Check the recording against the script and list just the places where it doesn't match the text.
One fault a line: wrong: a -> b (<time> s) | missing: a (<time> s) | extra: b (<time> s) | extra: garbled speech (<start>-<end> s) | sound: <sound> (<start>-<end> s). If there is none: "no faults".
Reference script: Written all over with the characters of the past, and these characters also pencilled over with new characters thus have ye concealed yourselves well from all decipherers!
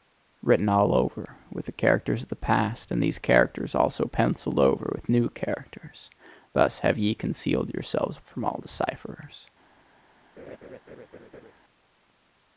missing: well (8.2 s)
sound: laugh (10.4-11.5 s)